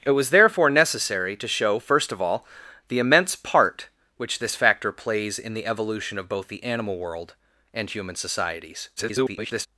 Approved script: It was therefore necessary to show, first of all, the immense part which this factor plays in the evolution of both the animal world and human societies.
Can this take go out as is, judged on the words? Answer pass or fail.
fail